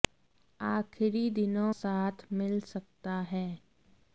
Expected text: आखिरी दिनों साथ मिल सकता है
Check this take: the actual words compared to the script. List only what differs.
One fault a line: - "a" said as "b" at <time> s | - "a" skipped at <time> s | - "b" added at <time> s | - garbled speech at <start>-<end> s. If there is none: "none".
none